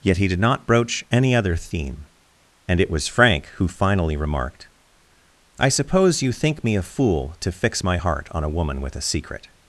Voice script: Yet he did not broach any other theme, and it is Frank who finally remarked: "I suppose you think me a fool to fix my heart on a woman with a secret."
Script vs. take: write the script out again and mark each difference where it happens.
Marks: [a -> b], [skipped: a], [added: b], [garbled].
Yet he did not broach any other theme, and it [is -> was] Frank who finally remarked: "I suppose you think me a fool to fix my heart on a woman with a secret."